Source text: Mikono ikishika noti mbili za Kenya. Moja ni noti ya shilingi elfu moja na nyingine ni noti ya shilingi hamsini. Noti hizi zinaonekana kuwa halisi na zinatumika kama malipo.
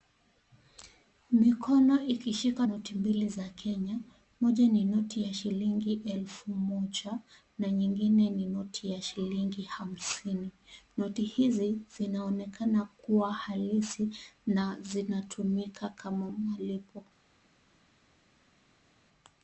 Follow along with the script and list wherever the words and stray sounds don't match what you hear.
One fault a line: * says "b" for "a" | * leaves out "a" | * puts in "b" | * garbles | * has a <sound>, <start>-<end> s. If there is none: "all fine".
all fine